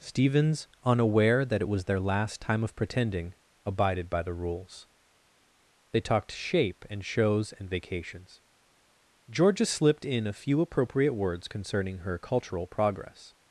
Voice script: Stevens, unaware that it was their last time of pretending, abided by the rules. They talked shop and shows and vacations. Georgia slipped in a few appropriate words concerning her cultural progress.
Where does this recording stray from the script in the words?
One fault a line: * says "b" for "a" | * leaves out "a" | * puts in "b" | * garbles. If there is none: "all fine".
* says "shape" for "shop"